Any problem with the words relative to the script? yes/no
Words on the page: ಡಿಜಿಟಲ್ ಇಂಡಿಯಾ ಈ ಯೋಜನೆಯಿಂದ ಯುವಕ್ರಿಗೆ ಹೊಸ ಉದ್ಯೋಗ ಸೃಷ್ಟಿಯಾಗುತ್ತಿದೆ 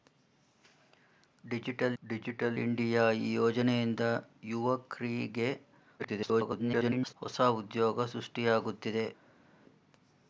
yes